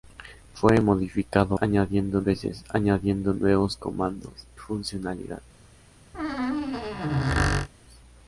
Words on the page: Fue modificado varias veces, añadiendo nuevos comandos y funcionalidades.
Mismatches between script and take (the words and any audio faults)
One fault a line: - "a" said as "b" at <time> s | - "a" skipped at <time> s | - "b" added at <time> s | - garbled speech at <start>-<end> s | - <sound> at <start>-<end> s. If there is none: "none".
- "varias" said as "añadiendo" at 1.6 s
- "y" skipped at 4.5 s
- squeak at 6.1-7.7 s